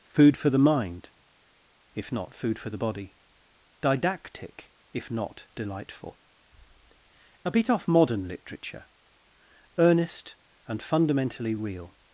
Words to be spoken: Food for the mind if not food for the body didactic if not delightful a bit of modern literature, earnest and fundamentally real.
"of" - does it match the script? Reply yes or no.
no